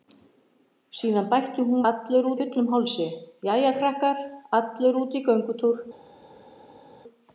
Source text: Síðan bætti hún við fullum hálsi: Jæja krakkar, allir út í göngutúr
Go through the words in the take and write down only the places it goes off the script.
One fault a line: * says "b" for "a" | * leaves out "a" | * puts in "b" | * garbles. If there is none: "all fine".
* says "allir" for "við"